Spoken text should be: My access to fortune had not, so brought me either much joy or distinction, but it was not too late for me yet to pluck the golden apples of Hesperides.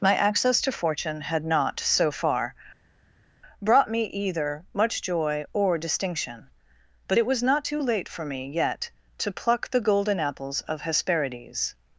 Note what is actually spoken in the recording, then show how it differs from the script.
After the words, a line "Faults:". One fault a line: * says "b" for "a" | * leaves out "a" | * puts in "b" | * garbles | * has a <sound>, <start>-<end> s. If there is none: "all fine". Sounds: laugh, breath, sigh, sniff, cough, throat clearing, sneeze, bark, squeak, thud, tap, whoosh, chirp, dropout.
My access to fortune had not, so far, brought me either much joy or distinction, but it was not too late for me yet to pluck the golden apples of Hesperides.
Faults:
* puts in "far"